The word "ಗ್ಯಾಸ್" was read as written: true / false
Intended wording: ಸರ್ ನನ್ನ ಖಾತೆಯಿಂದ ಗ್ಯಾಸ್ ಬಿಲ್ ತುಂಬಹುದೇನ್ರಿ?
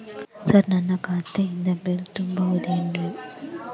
false